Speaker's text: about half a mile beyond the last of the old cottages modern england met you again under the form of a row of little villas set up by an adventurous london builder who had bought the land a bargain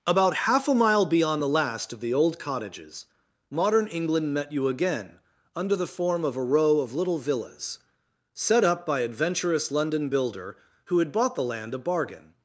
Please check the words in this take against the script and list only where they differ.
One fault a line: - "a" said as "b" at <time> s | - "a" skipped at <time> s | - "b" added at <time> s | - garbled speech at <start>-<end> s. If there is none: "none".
- "an" skipped at 9.0 s